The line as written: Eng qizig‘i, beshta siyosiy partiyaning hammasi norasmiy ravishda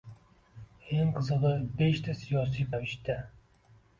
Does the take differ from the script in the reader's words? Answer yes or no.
yes